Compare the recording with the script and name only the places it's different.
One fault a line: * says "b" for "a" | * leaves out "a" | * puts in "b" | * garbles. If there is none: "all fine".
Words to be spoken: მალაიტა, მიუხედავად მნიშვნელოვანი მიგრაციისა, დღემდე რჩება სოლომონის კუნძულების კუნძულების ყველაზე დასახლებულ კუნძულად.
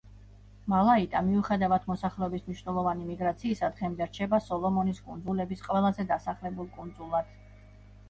* puts in "მოსახლეობის"
* leaves out "კუნძულების"